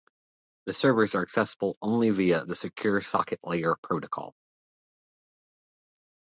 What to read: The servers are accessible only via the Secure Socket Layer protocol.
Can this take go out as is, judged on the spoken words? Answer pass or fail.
pass